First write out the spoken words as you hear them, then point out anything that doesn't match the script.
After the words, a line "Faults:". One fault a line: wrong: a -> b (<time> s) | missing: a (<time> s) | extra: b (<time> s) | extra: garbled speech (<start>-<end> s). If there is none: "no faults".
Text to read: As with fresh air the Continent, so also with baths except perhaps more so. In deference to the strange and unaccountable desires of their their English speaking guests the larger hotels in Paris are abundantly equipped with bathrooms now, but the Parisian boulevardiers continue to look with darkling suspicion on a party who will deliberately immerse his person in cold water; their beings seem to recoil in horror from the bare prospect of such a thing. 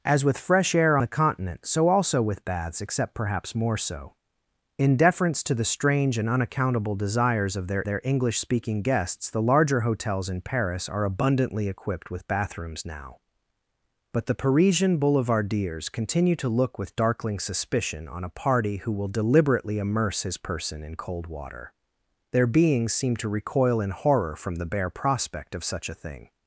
As with fresh air the Continent, so also with baths except perhaps more so. In deference to the strange and unaccountable desires of their their English speaking guests the larger hotels in Paris are abundantly equipped with bathrooms now, but the Parisian boulevardiers continue to look with darkling suspicion on a party who will deliberately immerse his person in cold water; their beings seem to recoil in horror from the bare prospect of such a thing.
Faults:
no faults